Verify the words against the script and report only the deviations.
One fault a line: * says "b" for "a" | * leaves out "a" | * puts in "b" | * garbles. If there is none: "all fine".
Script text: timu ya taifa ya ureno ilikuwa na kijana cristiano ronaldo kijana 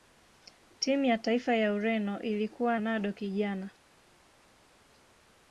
* leaves out "na kijana cristiano"